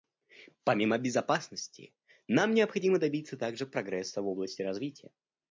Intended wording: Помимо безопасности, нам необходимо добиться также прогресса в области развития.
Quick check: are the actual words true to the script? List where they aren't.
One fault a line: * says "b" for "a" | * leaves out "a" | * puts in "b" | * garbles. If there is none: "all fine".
all fine